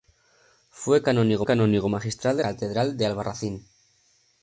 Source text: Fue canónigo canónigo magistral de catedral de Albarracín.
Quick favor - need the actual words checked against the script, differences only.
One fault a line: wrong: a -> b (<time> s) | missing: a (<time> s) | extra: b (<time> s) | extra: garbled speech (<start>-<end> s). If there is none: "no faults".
no faults